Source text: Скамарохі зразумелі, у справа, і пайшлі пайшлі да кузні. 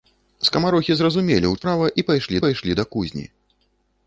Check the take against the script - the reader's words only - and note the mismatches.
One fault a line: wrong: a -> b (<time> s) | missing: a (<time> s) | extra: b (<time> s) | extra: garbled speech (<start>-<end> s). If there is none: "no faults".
no faults